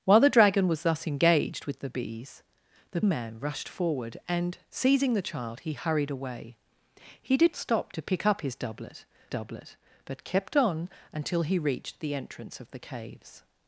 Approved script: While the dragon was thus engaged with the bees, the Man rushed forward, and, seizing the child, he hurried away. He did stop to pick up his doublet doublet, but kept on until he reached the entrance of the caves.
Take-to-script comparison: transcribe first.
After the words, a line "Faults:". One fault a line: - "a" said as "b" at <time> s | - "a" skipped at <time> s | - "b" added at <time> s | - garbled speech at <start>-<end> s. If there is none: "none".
While the dragon was thus engaged with the bees, the Man rushed forward, and, seizing the child, he hurried away. He did stop to pick up his doublet doublet, but kept on until he reached the entrance of the caves.
Faults:
none